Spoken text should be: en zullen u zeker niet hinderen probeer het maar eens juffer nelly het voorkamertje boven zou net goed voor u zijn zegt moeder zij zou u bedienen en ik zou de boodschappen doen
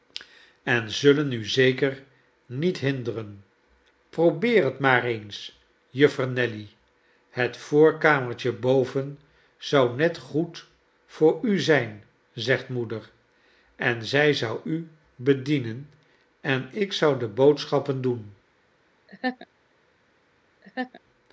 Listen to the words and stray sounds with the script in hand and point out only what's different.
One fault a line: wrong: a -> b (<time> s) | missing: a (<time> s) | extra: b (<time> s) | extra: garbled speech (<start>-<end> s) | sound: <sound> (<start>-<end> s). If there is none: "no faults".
extra: en (13.8 s)
sound: laugh (19.1-19.5 s)
sound: laugh (20.6-21.0 s)